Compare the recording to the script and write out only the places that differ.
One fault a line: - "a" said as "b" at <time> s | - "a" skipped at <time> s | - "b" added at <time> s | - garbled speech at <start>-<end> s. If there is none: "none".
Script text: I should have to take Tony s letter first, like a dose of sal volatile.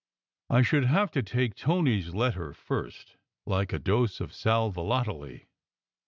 none